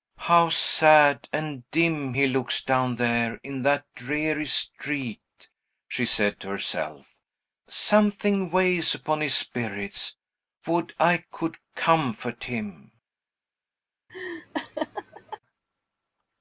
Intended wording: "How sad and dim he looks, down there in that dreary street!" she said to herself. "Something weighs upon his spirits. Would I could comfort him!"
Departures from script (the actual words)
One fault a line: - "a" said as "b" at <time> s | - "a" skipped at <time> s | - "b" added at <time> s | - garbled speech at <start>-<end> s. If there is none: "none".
none